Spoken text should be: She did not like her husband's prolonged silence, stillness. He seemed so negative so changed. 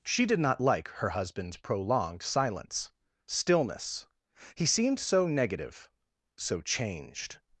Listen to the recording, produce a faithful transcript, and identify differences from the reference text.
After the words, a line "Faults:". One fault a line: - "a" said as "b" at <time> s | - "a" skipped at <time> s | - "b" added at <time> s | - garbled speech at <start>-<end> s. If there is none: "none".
She did not like her husband's prolonged silence, stillness. He seemed so negative so changed.
Faults:
none